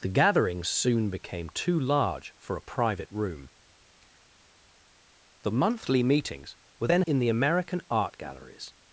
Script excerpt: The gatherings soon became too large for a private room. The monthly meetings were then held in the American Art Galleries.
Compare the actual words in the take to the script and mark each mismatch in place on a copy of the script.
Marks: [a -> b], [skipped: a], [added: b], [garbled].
The gatherings soon became too large for a private room. The monthly meetings were then [skipped: held] in the American Art Galleries.